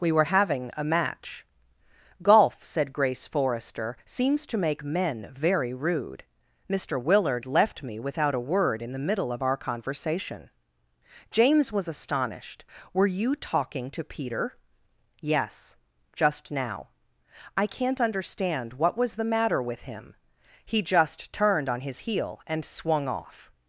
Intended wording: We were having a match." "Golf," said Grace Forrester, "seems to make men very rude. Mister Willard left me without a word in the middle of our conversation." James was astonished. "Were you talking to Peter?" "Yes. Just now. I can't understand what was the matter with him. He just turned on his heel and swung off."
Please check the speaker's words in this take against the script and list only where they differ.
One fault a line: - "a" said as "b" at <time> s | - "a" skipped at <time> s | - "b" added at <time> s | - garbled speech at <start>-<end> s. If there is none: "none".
none